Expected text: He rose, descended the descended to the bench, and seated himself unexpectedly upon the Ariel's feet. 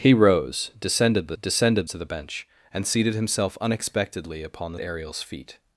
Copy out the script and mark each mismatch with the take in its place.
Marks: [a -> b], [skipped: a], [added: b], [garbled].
He rose, descended the descended to the bench, and seated himself unexpectedly upon the Ariel's feet.